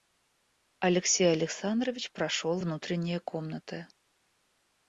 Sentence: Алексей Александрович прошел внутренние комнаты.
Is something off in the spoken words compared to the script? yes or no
no